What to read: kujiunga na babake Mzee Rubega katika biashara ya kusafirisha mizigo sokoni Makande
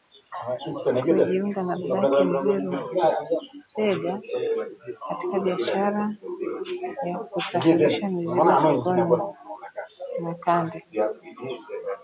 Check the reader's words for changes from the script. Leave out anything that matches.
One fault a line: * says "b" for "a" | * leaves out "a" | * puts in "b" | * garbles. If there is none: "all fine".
all fine